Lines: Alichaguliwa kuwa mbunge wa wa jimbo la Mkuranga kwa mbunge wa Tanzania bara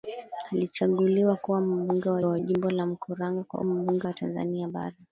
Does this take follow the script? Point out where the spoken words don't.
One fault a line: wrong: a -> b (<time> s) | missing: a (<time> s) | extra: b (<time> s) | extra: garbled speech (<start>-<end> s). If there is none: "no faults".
no faults